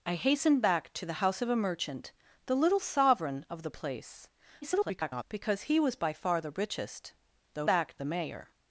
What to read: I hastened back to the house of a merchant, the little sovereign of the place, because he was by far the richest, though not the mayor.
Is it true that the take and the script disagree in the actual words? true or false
true